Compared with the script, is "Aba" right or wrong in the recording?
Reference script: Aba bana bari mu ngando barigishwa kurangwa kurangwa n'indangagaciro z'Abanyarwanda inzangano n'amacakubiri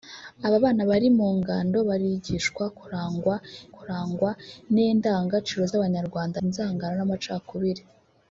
right